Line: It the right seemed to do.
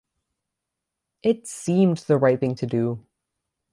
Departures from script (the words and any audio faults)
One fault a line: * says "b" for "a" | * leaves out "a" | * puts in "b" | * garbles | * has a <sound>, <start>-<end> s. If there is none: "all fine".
* puts in "seemed"
* says "thing" for "seemed"